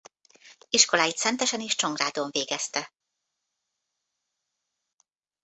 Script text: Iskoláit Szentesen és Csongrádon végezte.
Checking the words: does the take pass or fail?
pass